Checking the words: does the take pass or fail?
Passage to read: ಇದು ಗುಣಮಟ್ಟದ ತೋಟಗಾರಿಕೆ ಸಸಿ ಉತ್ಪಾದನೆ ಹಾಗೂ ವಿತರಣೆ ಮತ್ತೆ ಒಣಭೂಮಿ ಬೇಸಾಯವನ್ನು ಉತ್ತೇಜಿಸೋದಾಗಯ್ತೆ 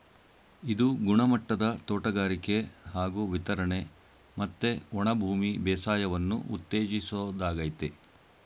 fail